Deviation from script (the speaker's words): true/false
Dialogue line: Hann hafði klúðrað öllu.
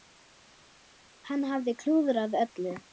false